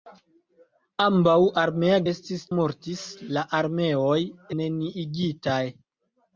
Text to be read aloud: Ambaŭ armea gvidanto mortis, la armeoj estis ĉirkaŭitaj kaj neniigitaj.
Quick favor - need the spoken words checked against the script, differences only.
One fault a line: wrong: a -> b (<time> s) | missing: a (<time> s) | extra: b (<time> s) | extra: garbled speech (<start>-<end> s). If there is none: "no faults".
wrong: gvidanto -> estis (2.1 s)
missing: estis ĉirkaŭitaj kaj (4.2 s)